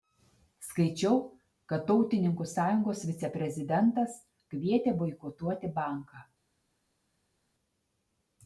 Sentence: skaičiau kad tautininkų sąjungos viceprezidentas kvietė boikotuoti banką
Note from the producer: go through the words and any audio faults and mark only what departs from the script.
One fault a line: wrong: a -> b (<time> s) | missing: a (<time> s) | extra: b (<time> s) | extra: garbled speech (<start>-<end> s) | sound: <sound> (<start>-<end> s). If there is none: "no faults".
no faults